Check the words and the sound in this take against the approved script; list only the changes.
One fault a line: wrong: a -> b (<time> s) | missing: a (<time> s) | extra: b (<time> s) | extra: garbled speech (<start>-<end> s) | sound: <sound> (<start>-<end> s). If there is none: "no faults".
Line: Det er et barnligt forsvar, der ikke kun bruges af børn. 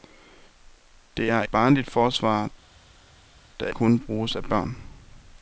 missing: et (1.4 s)
missing: ikke (3.7 s)